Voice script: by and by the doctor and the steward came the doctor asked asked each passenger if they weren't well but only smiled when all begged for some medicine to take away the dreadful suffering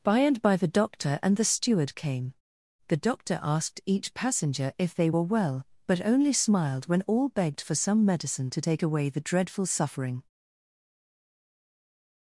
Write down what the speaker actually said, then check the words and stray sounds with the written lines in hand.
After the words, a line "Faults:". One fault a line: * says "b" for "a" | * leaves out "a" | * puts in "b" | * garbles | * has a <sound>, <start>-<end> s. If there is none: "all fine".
by and by the doctor and the steward came the doctor asked each passenger if they were well but only smiled when all begged for some medicine to take away the dreadful suffering
Faults:
* leaves out "asked"
* says "were" for "weren't"